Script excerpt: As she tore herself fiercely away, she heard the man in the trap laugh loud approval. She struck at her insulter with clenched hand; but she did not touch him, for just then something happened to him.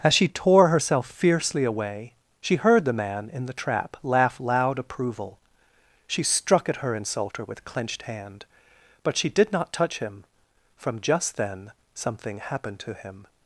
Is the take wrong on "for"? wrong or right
wrong